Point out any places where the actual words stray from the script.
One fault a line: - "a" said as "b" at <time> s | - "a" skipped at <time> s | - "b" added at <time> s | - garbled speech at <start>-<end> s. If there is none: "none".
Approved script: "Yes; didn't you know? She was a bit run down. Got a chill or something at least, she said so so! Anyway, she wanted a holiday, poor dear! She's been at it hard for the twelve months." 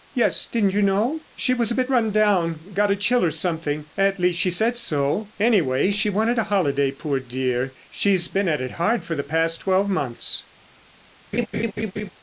- "so" skipped at 5.3 s
- "past" added at 9.2 s